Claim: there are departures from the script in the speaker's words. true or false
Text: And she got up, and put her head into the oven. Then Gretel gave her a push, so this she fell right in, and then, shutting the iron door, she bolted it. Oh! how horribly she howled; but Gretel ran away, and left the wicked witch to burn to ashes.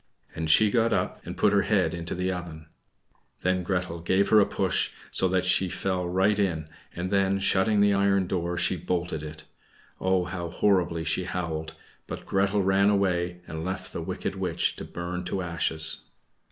true